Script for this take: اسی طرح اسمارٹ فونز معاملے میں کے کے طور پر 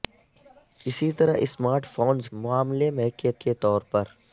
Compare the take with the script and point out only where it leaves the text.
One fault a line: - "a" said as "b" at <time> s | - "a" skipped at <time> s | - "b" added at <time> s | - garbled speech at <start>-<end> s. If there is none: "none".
none